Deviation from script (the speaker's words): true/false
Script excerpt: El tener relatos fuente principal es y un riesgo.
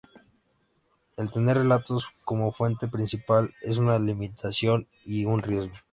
true